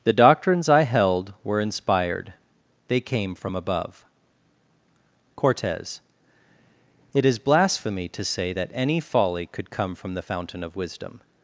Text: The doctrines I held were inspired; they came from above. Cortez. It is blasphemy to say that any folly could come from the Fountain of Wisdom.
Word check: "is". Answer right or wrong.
right